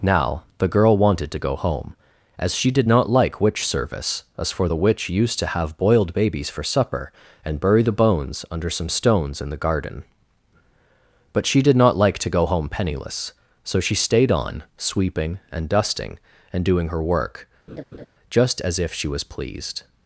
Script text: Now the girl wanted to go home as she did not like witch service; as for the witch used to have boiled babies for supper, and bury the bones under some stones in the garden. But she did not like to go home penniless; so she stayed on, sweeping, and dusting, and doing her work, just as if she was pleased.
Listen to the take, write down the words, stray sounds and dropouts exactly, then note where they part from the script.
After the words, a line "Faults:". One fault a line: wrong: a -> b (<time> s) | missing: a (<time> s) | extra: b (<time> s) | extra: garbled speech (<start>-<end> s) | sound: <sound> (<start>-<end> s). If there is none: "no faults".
Now the girl wanted to go home as she did not like witch service; as for the witch used to have boiled babies for supper, and bury the bones under some stones in the garden. But she did not like to go home penniless; so she stayed on, sweeping, and dusting, and doing her work, just as if she was pleased.
Faults:
sound: laugh (17.7-18.1 s)